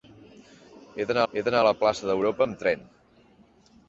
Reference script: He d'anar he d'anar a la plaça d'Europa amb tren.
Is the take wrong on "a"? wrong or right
right